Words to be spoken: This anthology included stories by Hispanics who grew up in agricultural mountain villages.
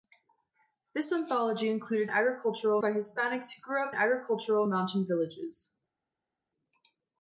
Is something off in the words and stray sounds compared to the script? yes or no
yes